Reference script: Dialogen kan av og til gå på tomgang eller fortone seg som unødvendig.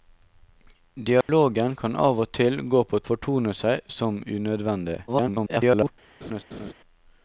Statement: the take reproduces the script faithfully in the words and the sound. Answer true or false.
false